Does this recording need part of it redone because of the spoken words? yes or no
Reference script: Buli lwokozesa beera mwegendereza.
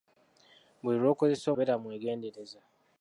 no